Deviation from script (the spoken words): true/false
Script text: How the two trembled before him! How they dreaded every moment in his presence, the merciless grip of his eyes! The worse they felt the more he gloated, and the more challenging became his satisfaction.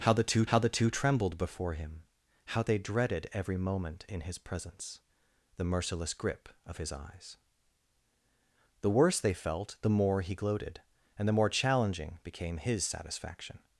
true